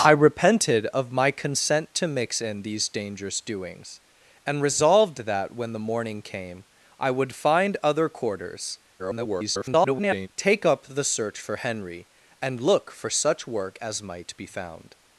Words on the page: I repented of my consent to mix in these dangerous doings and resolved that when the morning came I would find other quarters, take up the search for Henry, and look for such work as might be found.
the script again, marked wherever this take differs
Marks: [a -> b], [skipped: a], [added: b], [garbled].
I repented of my consent to mix in these dangerous doings and resolved that when the morning came I would find other quarters, [garbled] take up the search for Henry, and look for such work as might be found.